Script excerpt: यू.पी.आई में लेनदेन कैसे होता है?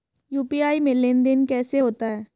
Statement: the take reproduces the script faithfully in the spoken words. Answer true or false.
true